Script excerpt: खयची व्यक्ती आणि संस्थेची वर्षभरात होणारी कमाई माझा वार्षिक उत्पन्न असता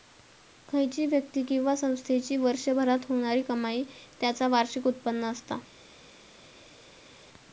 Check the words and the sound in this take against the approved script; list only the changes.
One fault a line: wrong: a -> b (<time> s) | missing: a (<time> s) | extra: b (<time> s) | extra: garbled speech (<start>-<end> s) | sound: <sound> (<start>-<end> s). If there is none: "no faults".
wrong: आणि -> किंवा (1.4 s)
wrong: माझा -> त्याचा (4.2 s)